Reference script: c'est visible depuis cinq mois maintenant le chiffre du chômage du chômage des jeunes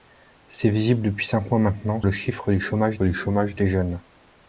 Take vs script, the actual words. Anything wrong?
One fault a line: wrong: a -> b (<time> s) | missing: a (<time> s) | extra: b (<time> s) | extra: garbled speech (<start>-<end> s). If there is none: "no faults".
no faults